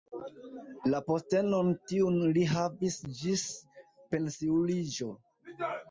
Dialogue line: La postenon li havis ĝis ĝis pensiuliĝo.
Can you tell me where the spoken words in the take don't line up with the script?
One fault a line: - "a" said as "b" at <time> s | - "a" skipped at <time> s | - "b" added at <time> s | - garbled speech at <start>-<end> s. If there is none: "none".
- "tiun" added at 1.9 s
- "ĝis" skipped at 3.4 s